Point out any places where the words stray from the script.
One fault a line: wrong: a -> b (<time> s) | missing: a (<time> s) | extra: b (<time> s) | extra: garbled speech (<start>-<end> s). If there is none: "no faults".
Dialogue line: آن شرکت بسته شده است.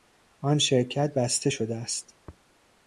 no faults